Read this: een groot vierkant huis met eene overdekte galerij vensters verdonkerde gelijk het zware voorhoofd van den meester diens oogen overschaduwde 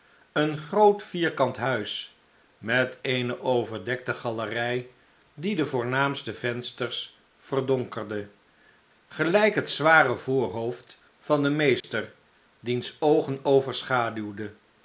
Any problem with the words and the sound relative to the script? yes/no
yes